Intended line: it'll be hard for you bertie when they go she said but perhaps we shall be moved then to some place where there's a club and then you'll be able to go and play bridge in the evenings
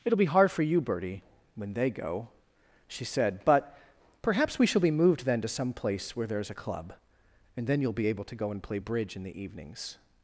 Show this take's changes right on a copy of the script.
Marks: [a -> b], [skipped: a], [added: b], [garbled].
it'll be hard for you bertie when they go she said but perhaps we shall be moved then to some place where there's a club and then you'll be able to go and play bridge in the evenings